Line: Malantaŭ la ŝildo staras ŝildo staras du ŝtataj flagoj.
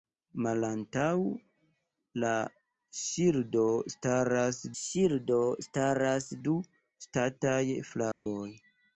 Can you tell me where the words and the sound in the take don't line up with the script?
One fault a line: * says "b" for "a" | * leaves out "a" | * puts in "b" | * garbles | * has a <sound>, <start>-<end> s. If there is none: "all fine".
* has a dropout, 8.1-8.3 s